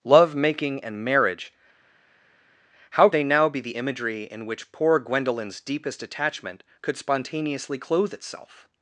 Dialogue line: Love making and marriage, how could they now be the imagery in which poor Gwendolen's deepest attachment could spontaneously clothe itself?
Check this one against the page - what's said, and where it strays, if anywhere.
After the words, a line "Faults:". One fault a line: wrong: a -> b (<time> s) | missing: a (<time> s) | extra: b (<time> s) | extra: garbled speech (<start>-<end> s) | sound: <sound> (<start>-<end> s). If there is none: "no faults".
Love making and marriage, how they now be the imagery in which poor Gwendolen's deepest attachment could spontaneously clothe itself?
Faults:
missing: could (3.1 s)